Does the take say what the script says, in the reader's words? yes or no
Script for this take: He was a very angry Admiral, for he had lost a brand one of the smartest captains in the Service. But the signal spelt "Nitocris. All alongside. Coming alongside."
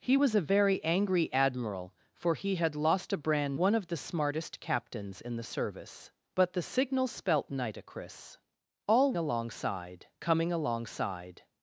yes